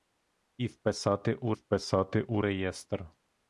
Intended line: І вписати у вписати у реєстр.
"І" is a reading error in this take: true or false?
false